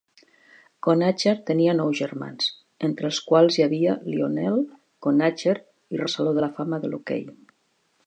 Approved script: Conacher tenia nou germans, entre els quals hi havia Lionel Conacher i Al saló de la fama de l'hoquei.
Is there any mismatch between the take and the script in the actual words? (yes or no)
no